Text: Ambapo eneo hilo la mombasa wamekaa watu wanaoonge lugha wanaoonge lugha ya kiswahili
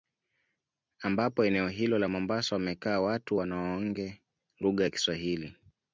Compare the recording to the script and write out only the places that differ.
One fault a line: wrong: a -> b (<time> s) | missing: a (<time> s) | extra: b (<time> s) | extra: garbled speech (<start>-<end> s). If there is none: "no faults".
missing: wanaoonge lugha (4.8 s)